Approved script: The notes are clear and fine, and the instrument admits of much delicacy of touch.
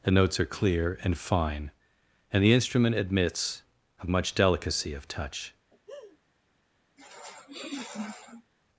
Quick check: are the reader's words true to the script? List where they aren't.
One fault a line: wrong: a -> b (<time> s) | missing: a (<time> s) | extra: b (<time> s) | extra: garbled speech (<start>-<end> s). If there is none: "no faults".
no faults